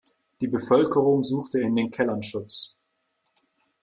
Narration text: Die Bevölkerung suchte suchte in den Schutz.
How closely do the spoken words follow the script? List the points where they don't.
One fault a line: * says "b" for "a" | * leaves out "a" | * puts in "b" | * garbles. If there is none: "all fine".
* leaves out "suchte"
* puts in "Kellern"